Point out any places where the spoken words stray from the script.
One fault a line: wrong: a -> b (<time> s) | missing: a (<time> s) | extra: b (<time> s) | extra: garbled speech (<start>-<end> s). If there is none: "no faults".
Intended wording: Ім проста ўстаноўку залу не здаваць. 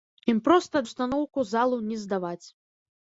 no faults